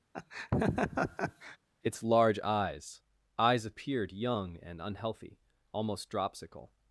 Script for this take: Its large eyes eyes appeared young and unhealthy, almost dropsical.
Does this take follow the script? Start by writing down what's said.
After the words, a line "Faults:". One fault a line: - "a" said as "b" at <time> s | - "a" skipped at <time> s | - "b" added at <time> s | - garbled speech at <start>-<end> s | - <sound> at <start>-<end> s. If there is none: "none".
Its large eyes eyes appeared young and unhealthy, almost dropsical.
Faults:
- laugh at 0.1-1.6 s